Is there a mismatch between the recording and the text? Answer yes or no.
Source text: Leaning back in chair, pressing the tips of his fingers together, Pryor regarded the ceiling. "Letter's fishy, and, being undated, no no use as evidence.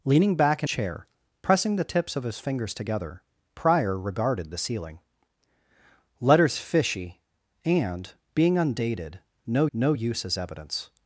no